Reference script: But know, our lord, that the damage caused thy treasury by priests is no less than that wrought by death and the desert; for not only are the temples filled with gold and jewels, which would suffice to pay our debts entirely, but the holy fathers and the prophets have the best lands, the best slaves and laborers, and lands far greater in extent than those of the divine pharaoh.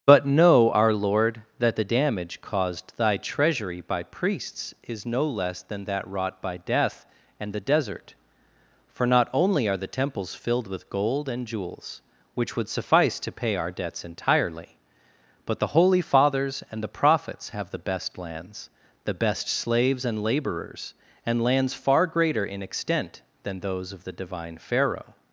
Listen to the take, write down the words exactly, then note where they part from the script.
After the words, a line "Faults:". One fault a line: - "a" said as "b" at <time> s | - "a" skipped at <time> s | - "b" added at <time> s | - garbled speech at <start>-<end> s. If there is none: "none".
But know, our lord, that the damage caused thy treasury by priests is no less than that wrought by death and the desert; for not only are the temples filled with gold and jewels, which would suffice to pay our debts entirely, but the holy fathers and the prophets have the best lands, the best slaves and laborers, and lands far greater in extent than those of the divine pharaoh.
Faults:
none